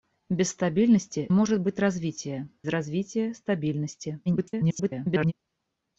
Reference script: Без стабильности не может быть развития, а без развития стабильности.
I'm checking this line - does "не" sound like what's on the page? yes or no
no